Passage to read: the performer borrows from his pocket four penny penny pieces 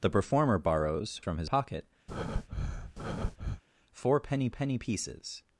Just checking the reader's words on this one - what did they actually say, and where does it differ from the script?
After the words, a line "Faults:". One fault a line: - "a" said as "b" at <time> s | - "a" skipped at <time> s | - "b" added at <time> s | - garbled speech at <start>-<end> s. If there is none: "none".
the performer borrows from his pocket four penny penny pieces
Faults:
none